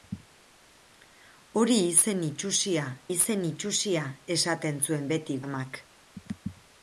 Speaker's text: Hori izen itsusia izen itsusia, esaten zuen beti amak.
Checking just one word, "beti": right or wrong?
right